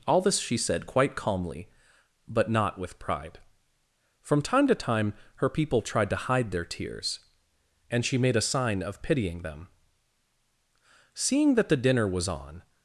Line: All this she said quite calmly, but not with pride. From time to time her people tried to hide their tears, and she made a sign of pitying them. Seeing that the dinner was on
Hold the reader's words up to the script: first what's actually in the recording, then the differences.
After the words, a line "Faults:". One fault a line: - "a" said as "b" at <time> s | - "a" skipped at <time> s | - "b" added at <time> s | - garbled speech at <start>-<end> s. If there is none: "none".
All this she said quite calmly, but not with pride. From time to time her people tried to hide their tears, and she made a sign of pitying them. Seeing that the dinner was on
Faults:
none